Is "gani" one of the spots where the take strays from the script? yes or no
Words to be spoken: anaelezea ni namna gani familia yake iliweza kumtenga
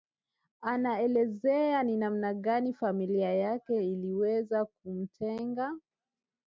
no